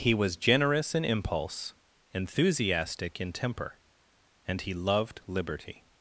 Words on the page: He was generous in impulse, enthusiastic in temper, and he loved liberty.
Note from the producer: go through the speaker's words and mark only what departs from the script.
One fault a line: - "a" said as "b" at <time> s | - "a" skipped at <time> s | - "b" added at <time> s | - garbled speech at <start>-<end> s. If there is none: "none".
none